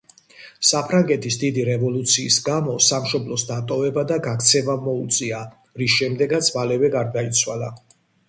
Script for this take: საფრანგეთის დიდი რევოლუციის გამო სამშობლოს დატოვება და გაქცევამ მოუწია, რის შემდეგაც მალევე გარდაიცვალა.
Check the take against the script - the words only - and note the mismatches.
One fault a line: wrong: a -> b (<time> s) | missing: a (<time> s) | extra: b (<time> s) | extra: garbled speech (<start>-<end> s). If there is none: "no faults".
no faults